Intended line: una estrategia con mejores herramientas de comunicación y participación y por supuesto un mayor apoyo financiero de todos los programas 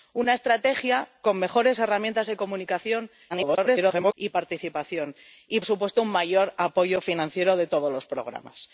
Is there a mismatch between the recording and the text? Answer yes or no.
yes